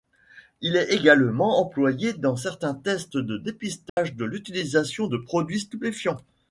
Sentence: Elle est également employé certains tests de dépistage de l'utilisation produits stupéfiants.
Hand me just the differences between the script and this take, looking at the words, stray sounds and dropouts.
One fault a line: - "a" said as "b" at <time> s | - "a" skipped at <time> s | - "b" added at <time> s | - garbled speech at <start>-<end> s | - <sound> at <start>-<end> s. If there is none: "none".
- "Elle" said as "Il" at 0.6 s
- "dans" added at 2.1 s
- dropout at 3.9-4.0 s
- "de" added at 5.1 s